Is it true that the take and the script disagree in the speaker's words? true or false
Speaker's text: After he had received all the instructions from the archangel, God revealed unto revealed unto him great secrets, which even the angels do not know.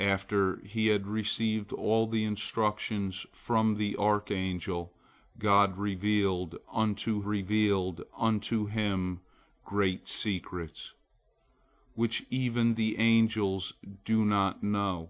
false